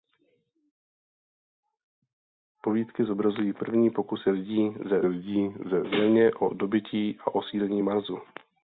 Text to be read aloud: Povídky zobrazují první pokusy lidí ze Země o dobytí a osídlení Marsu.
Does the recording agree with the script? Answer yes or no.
no